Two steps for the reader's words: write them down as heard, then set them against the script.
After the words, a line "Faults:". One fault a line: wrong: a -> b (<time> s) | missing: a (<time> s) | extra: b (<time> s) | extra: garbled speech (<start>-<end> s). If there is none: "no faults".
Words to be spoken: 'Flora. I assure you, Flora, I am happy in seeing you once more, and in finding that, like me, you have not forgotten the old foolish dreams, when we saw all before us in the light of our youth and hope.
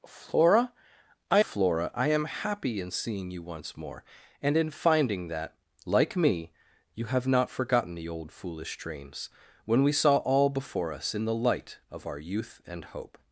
'Flora. I Flora, I am happy in seeing you once more, and in finding that, like me, you have not forgotten the old foolish dreams, when we saw all before us in the light of our youth and hope.
Faults:
missing: assure you (1.4 s)